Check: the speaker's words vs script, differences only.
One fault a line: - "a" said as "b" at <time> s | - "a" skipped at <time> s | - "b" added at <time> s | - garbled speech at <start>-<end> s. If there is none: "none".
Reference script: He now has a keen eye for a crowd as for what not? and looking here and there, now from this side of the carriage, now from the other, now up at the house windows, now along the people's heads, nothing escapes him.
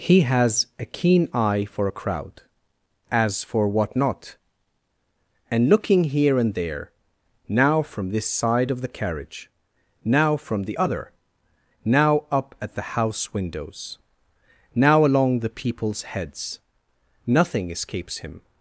- "now" skipped at 0.2 s